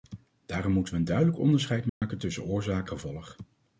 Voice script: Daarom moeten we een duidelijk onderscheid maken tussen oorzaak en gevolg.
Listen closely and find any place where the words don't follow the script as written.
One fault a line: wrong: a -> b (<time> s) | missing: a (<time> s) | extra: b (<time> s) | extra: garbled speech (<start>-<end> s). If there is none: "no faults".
missing: en (2.9 s)